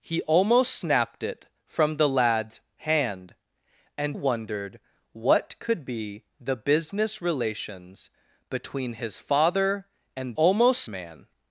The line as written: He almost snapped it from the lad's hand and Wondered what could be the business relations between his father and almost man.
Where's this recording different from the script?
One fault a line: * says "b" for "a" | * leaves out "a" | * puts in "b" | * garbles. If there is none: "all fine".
all fine